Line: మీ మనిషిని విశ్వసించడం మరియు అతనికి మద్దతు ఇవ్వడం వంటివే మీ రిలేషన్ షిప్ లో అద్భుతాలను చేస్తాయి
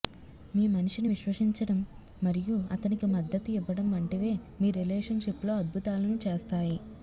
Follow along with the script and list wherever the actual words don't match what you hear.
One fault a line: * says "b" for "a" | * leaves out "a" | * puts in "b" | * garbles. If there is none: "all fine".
all fine